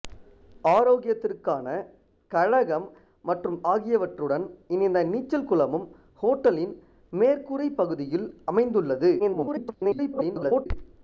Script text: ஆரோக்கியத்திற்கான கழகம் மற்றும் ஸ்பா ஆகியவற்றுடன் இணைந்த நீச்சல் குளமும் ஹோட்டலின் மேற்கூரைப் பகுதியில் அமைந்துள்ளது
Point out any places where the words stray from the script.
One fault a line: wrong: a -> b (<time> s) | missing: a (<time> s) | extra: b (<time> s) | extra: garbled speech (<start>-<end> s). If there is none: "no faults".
missing: ஸ்பா (3.6 s)
extra: garbled speech (9.2-10.7 s)